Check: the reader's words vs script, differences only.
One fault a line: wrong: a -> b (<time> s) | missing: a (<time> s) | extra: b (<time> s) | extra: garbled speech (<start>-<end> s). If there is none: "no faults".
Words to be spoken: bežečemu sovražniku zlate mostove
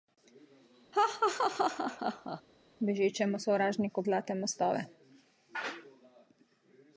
no faults